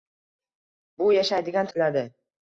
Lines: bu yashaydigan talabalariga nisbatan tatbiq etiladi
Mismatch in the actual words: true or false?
true